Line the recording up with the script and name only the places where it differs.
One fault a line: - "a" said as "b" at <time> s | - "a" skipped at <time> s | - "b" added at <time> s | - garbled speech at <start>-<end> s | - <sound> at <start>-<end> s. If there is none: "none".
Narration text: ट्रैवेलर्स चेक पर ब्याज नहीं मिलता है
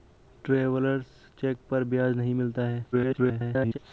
- garbled speech at 2.9-3.8 s